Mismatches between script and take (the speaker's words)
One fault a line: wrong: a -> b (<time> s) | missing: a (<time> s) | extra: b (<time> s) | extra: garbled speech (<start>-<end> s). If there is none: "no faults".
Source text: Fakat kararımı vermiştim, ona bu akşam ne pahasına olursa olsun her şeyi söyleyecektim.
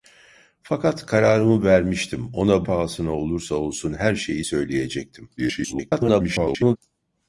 missing: bu akşam ne (2.6 s)
extra: garbled speech (5.4-6.8 s)